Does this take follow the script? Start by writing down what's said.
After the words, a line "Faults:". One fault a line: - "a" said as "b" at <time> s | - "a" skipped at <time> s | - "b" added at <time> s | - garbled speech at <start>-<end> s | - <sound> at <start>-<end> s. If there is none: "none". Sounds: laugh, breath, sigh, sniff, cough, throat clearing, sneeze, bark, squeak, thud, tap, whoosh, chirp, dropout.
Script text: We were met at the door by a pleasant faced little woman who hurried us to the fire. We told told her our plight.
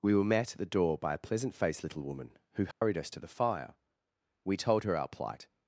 We were met at the door by a pleasant faced little woman who hurried us to the fire. We told her our plight.
Faults:
- dropout at 2.7-2.8 s
- "told" skipped at 4.8 s